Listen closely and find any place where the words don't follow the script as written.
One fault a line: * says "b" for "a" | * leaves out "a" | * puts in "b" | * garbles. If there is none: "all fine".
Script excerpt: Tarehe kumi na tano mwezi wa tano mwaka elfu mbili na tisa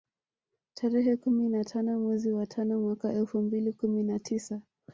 * puts in "kumi"